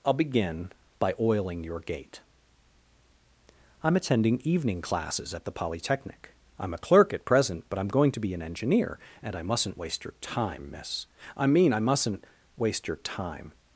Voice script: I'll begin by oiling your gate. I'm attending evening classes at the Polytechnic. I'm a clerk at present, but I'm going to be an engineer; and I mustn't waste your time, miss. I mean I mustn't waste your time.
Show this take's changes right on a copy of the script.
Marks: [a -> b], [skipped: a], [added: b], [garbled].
I'll begin by oiling your gate. I'm attending evening classes at the Polytechnic. I'm a clerk at present, but I'm going to be an engineer; and I mustn't waste your time, miss. I mean I mustn't waste your time.